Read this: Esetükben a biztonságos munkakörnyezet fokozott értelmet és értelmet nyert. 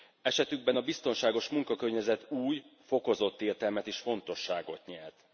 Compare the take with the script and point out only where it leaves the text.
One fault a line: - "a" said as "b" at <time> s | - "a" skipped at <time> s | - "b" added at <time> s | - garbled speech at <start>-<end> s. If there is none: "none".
- "új" added at 2.3 s
- "értelmet" said as "fontosságot" at 4.0 s